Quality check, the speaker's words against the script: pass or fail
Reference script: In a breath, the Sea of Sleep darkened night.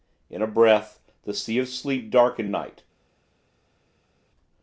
pass